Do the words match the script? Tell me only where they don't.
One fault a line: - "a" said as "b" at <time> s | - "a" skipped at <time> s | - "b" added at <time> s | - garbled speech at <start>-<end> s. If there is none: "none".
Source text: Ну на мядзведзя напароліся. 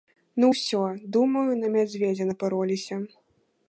- "ўсё думаю" added at 0.5 s